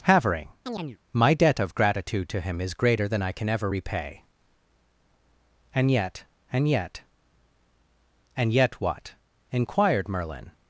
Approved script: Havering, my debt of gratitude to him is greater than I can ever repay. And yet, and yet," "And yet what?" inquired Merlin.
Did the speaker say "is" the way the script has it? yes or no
yes